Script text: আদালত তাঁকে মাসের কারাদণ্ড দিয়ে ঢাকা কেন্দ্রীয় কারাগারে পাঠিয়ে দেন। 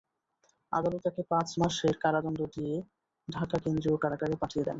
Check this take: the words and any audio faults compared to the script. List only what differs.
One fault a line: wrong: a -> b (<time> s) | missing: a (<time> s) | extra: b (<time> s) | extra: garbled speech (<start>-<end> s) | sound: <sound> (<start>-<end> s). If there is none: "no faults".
extra: পাঁচ (1.3 s)